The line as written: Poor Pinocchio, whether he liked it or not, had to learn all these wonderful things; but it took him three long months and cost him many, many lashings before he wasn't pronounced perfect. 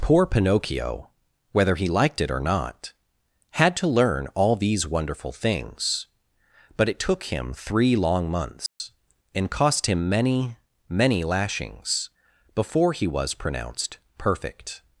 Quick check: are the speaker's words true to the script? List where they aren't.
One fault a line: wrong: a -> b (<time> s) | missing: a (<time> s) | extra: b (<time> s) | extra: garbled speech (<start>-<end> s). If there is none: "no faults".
wrong: wasn't -> was (13.1 s)